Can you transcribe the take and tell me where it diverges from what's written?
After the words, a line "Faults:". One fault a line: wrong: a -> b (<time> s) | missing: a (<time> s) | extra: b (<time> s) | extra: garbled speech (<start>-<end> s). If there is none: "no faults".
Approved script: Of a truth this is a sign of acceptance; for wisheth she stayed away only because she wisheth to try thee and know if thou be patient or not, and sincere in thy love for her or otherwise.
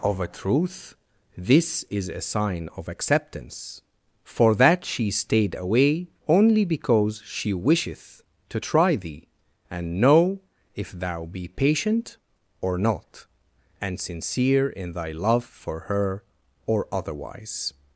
Of a truth this is a sign of acceptance; for that she stayed away only because she wisheth to try thee and know if thou be patient or not, and sincere in thy love for her or otherwise.
Faults:
wrong: wisheth -> that (4.5 s)